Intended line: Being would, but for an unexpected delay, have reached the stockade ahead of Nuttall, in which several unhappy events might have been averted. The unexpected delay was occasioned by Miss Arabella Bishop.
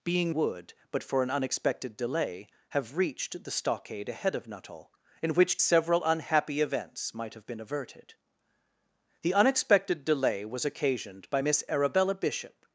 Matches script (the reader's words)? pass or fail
pass